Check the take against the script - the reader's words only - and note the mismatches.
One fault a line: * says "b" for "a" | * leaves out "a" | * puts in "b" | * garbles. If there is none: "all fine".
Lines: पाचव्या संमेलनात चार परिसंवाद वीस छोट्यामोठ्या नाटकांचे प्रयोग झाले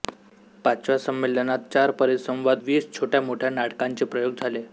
all fine